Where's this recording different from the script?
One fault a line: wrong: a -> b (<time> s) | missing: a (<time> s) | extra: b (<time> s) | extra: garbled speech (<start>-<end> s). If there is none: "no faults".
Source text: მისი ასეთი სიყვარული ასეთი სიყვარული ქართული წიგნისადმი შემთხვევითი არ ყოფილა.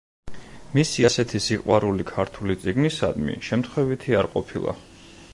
missing: ასეთი სიყვარული (2.0 s)